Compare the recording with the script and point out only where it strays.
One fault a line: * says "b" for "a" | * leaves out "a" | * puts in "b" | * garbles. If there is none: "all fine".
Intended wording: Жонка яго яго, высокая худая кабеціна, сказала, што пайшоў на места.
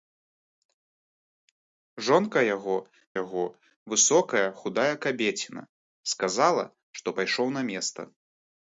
all fine